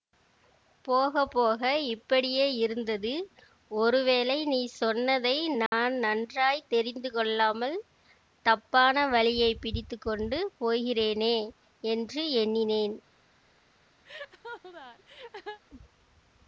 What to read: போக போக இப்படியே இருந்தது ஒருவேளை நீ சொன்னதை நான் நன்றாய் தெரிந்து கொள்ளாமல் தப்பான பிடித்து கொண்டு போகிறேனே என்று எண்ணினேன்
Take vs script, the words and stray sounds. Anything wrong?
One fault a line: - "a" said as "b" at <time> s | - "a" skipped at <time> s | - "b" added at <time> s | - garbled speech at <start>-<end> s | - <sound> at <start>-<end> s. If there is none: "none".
- dropout at 5.7-5.7 s
- "வழியை" added at 9.1 s
- laugh at 14.0-15.6 s